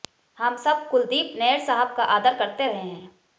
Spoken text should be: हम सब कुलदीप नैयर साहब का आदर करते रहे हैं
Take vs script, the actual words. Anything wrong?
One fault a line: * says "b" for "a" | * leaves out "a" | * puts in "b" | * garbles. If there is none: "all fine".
all fine